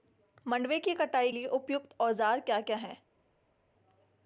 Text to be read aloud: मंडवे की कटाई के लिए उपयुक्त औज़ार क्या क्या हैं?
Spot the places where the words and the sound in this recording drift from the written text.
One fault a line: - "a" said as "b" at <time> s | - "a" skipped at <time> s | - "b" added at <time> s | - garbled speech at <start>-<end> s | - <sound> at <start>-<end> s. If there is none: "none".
- "के" skipped at 1.3 s